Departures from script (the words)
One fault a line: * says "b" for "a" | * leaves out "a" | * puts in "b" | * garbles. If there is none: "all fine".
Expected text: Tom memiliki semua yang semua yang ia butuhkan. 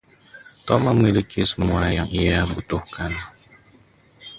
* leaves out "semua yang"